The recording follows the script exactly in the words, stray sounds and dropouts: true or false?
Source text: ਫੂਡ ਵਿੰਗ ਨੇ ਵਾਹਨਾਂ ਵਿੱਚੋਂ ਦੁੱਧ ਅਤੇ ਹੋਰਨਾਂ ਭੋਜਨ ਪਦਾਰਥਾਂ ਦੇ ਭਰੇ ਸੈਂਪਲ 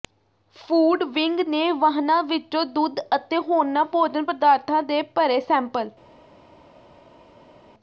true